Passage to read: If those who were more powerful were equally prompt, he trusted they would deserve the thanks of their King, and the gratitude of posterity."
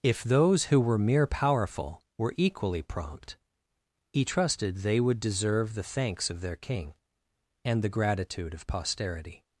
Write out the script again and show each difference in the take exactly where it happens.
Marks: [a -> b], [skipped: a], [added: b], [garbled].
If those who were [more -> mere] powerful were equally prompt, he trusted they would deserve the thanks of their King, and the gratitude of posterity."